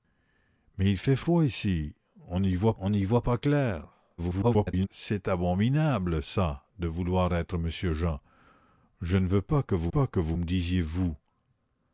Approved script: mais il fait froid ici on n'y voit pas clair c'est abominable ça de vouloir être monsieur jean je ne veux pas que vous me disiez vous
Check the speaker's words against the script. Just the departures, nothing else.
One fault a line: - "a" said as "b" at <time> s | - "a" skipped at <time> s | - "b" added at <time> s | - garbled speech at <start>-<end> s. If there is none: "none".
- "on n'y voit" added at 2.8 s
- garbled speech at 4.2-4.9 s
- "pas que vous" added at 9.9 s